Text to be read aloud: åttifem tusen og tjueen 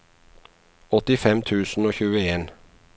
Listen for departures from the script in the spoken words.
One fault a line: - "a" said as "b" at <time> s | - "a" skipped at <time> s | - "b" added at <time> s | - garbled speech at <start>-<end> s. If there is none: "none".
none